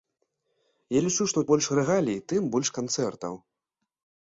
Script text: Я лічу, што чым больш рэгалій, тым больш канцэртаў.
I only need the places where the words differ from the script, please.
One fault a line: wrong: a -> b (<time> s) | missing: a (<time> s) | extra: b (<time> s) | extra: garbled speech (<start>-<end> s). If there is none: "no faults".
missing: чым (1.4 s)